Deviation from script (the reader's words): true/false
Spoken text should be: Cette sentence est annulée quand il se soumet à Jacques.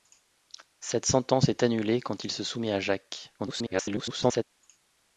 true